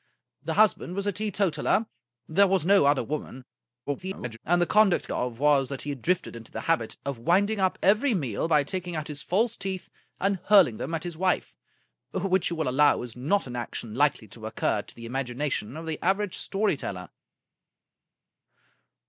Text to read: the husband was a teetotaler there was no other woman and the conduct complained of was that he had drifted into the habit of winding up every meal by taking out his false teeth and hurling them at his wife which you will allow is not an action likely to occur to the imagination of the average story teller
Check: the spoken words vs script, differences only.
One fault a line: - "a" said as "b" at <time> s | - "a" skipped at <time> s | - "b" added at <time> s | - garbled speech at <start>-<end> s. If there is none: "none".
- garbled speech at 3.9-4.4 s
- "complained" skipped at 5.1 s